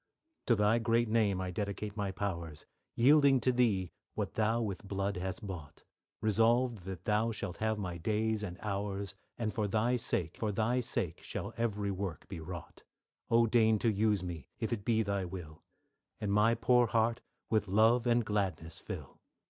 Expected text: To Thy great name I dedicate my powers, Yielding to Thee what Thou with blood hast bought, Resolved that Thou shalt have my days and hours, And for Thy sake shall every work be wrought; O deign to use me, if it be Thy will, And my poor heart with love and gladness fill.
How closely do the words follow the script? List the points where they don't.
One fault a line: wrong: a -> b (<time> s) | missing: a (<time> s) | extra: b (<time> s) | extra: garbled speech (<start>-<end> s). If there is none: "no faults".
extra: for Thy sake (10.4 s)